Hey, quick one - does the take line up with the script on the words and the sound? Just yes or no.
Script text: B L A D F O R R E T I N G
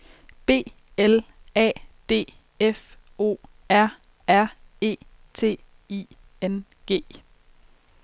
yes